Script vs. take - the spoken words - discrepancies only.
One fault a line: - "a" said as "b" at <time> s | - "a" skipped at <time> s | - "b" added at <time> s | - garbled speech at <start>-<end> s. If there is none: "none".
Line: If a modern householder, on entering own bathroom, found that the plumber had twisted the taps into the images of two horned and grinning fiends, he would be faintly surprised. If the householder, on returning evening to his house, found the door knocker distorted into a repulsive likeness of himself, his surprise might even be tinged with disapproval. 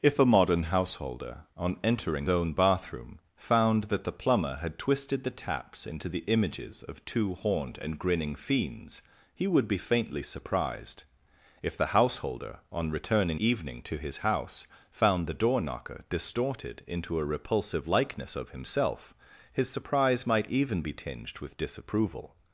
none